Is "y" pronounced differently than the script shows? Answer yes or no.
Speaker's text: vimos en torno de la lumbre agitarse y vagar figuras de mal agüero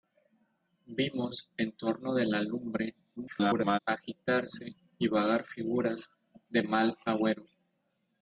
no